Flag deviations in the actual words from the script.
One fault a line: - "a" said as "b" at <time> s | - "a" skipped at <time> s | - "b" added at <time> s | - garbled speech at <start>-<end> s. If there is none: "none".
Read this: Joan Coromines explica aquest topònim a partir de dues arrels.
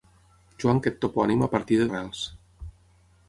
- "Coromines explica" skipped at 0.8 s
- "dues" skipped at 1.9 s